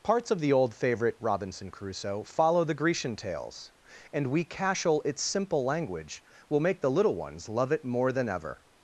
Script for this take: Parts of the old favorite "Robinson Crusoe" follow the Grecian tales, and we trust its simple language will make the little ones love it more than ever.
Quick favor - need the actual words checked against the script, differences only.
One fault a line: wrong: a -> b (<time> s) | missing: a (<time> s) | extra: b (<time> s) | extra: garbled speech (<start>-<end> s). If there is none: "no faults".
wrong: trust -> cashel (4.5 s)